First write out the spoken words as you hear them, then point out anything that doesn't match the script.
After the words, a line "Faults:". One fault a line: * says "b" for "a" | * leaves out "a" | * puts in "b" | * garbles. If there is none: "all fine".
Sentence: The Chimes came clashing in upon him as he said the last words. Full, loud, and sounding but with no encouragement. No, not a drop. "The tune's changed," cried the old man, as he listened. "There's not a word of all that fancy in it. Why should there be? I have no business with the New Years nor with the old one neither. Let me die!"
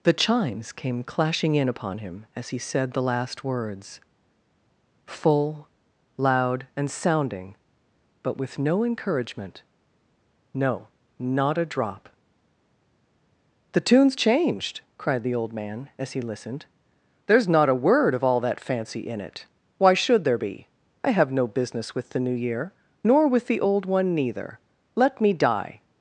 The Chimes came clashing in upon him as he said the last words. Full, loud, and sounding but with no encouragement. No, not a drop. "The tune's changed," cried the old man, as he listened. "There's not a word of all that fancy in it. Why should there be? I have no business with the New Year nor with the old one neither. Let me die!"
Faults:
* says "Year" for "Years"